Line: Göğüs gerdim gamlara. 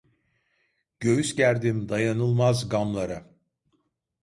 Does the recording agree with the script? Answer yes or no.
no